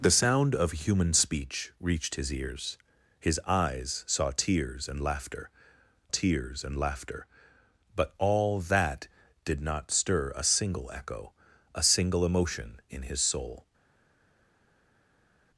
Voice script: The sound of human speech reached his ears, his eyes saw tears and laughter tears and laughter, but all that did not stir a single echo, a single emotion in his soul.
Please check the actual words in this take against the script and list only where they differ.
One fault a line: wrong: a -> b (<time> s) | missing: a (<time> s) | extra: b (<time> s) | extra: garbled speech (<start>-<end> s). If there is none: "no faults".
no faults